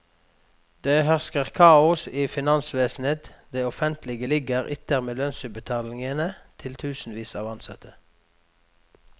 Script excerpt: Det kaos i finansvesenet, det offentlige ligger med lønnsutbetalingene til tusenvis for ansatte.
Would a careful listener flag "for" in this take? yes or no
yes